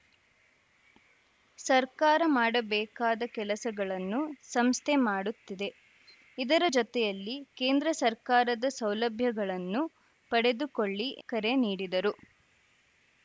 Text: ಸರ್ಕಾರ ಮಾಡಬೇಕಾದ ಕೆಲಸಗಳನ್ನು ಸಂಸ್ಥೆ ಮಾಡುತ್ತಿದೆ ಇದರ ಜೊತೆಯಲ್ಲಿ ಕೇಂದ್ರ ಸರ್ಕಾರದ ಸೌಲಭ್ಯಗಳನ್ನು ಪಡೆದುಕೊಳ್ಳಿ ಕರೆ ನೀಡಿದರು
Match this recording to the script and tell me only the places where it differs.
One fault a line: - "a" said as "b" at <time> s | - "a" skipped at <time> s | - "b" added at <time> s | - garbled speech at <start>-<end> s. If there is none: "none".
none